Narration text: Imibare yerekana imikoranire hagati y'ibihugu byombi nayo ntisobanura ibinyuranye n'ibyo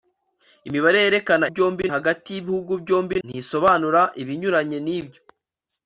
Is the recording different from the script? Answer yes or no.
yes